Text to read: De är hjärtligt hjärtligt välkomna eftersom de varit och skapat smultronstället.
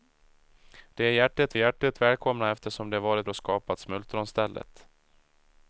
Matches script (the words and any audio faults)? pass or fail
pass